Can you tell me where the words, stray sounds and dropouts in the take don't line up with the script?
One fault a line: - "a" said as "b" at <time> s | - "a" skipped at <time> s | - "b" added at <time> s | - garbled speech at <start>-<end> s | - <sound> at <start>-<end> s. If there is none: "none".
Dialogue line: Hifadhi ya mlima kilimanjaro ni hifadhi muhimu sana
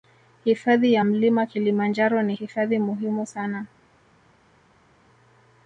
none